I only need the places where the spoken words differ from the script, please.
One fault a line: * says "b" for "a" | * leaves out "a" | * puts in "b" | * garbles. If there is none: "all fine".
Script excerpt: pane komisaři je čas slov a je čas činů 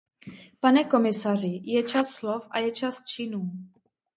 all fine